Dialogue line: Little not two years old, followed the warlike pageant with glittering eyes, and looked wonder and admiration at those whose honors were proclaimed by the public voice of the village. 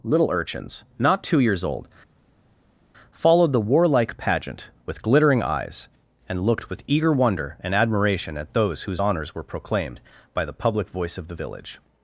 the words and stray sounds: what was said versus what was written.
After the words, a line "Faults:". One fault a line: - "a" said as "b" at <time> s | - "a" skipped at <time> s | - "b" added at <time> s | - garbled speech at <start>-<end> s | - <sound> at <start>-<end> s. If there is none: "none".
Little urchins, not two years old, followed the warlike pageant with glittering eyes, and looked with eager wonder and admiration at those whose honors were proclaimed by the public voice of the village.
Faults:
- "urchins" added at 0.3 s
- "with eager" added at 6.7 s